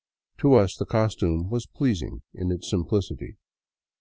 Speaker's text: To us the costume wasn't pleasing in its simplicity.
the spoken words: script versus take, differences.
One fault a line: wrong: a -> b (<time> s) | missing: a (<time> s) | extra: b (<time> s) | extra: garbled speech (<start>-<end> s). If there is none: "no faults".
wrong: wasn't -> was (1.5 s)